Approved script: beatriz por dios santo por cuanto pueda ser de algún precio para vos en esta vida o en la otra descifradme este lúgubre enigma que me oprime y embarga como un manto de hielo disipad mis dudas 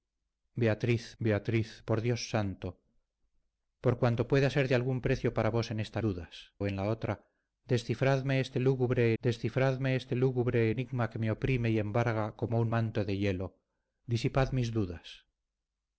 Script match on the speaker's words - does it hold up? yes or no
no